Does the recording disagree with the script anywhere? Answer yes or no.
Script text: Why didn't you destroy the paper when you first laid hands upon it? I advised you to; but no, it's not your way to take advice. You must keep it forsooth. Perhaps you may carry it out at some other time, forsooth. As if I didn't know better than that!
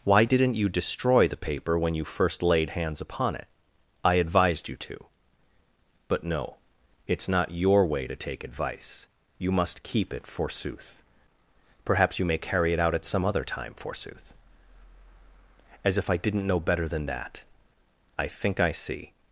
yes